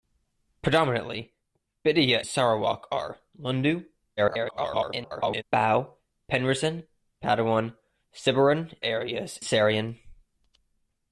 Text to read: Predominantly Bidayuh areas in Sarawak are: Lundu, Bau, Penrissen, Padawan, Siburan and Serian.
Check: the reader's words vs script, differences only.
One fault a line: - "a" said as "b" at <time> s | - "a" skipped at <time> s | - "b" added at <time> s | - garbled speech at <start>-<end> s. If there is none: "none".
- "areas in" skipped at 2.2 s
- garbled speech at 4.2-5.4 s
- "and" said as "areas" at 8.8 s